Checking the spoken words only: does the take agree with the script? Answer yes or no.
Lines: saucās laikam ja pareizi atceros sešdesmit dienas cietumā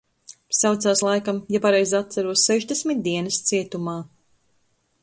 yes